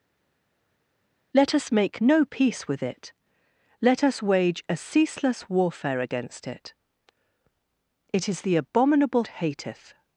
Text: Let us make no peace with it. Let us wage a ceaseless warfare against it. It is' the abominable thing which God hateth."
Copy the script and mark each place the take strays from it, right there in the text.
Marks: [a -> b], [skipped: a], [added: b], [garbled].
Let us make no peace with it. Let us wage a ceaseless warfare against it. It is' the abominable [skipped: thing which God] hateth."